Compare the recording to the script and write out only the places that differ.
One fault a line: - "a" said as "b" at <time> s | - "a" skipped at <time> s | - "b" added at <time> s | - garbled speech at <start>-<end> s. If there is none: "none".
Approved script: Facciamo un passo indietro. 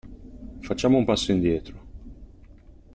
none